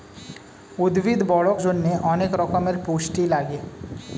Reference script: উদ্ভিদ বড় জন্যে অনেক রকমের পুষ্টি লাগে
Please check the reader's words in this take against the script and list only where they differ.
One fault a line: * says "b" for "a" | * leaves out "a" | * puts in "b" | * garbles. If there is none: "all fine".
all fine